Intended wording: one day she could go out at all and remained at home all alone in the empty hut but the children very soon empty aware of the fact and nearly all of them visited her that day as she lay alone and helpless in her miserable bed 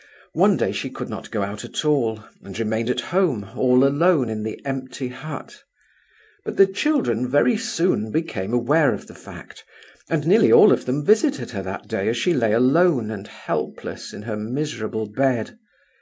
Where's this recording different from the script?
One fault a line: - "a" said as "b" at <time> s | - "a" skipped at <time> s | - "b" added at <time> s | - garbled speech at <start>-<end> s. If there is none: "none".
- "not" added at 1.1 s
- "empty" said as "became" at 8.1 s